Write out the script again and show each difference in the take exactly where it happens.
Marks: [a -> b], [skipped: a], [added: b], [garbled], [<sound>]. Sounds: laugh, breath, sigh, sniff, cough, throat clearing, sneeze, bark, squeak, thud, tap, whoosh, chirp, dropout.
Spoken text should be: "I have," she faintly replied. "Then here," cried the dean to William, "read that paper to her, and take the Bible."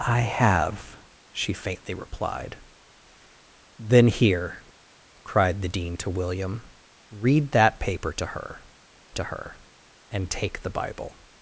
"I have," she faintly replied. "Then here," cried the dean to William, "read that paper to her, [added: to her] and take the Bible."